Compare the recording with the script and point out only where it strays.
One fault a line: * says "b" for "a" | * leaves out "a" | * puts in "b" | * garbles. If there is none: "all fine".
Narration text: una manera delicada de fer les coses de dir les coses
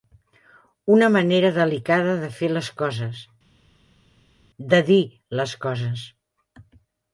all fine